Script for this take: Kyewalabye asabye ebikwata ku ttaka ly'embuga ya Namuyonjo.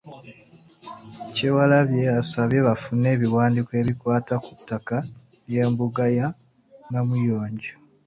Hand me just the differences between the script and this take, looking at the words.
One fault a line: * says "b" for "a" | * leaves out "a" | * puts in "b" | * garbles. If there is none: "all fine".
* puts in "bafune ebiwandiiko"